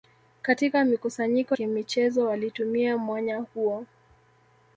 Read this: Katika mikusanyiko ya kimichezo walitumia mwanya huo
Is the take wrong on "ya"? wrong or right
wrong